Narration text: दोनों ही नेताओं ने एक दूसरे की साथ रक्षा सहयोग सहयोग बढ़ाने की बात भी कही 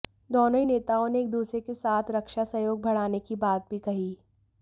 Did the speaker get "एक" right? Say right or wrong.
right